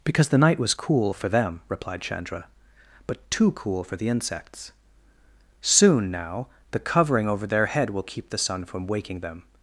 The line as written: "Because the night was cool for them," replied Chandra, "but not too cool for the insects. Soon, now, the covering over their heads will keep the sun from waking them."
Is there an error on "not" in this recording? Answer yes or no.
yes